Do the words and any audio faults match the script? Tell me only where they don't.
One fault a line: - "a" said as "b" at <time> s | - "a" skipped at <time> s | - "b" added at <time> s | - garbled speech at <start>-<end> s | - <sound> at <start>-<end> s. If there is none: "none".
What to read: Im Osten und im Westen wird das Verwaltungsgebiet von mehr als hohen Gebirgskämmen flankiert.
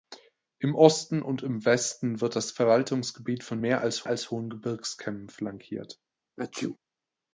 - "als" added at 4.1 s
- sneeze at 6.4-6.8 s